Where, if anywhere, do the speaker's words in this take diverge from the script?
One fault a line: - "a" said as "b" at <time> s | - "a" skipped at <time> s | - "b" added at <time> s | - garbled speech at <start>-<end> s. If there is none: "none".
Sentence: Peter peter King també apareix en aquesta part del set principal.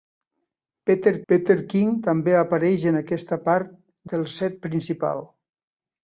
none